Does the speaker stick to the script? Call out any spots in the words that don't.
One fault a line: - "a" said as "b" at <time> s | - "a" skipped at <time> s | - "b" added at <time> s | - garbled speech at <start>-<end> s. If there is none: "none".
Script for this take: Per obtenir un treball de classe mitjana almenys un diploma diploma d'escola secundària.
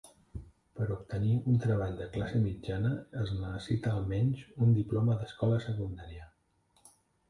- "es necessita" added at 3.3 s
- "diploma" skipped at 5.2 s